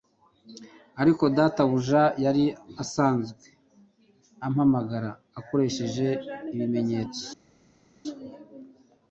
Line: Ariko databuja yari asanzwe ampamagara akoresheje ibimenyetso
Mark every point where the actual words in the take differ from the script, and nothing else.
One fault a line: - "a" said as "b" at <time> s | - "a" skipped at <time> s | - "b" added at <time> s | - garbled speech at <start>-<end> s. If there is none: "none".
none